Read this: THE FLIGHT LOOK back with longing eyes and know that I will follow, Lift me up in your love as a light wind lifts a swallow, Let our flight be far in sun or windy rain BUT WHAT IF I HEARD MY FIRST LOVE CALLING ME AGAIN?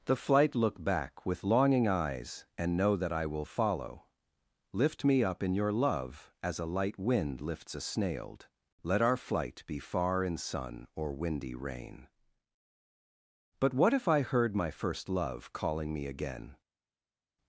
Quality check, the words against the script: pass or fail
fail